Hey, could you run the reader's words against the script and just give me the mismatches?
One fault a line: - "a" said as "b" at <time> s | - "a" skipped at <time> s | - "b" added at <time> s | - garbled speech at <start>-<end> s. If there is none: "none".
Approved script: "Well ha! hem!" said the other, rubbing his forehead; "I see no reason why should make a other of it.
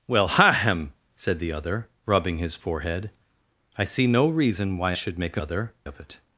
none